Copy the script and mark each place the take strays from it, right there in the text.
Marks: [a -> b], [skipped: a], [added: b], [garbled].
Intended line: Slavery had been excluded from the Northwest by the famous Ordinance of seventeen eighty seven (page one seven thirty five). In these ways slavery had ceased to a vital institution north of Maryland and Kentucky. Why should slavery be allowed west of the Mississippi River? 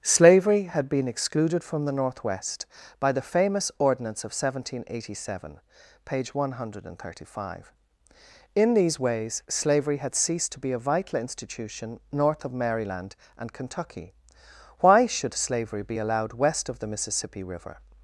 Slavery had been excluded from the Northwest by the famous Ordinance of seventeen eighty seven (page one [seven -> hundred] thirty five). In these ways slavery had ceased to [added: be] a vital institution north of Maryland and Kentucky. Why should slavery be allowed west of the Mississippi River?